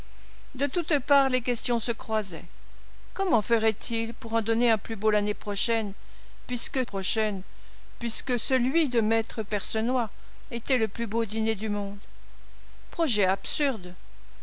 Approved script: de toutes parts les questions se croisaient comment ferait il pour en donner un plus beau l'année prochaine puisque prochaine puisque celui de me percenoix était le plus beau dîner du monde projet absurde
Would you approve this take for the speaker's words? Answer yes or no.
yes